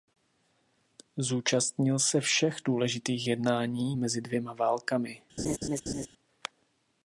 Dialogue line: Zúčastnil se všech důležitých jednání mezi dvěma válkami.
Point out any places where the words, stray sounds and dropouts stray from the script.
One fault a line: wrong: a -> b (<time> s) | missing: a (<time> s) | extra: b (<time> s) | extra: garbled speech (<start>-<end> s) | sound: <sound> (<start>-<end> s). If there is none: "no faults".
sound: laugh (5.4-6.1 s)